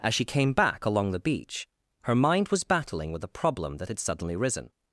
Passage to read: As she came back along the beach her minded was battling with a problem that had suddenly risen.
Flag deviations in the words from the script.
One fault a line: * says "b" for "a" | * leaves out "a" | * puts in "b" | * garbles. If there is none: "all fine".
* says "mind" for "minded"